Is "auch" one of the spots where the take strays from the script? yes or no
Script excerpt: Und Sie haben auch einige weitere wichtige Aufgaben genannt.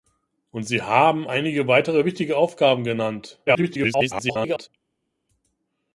yes